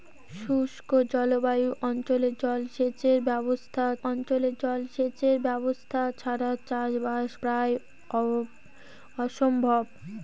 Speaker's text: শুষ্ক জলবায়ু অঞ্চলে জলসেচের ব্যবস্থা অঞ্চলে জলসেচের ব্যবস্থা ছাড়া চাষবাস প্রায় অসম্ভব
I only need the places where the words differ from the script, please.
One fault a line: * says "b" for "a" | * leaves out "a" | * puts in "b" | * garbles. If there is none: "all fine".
all fine